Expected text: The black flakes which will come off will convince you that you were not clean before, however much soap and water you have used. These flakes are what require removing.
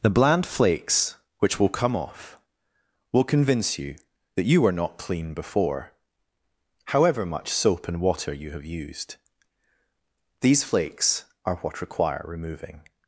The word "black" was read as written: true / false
false